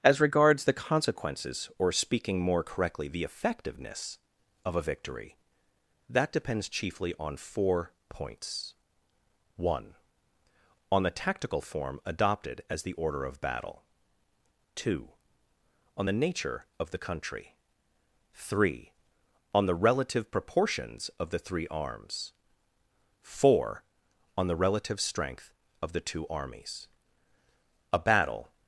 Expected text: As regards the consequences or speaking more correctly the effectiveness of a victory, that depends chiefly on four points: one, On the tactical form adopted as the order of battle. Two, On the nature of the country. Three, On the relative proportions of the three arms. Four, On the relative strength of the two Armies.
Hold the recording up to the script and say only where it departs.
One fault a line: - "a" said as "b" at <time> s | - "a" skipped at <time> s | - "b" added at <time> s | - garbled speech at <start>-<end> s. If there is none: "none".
- "A battle" added at 27.9 s